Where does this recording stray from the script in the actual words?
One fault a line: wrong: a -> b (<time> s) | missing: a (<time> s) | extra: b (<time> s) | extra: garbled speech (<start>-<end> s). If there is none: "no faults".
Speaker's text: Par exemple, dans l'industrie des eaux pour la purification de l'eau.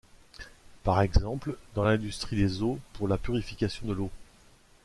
no faults